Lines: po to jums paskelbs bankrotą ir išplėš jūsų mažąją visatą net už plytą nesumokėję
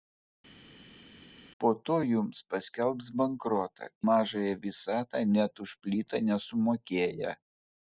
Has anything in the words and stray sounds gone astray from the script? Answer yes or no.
yes